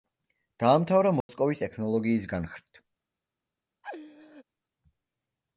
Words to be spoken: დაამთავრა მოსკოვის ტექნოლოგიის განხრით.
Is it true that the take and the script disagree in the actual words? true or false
false